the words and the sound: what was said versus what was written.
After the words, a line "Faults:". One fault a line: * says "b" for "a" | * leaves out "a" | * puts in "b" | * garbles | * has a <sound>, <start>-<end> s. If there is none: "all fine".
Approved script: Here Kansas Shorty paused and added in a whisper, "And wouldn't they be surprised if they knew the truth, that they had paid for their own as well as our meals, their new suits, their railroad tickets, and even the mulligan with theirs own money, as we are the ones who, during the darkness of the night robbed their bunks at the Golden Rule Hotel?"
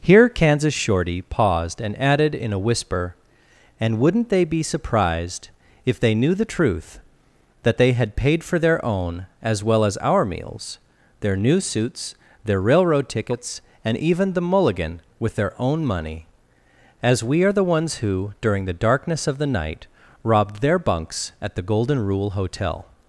Here Kansas Shorty paused and added in a whisper, "And wouldn't they be surprised if they knew the truth, that they had paid for their own as well as our meals, their new suits, their railroad tickets, and even the mulligan with their own money, as we are the ones who, during the darkness of the night robbed their bunks at the Golden Rule Hotel?"
Faults:
* says "their" for "theirs"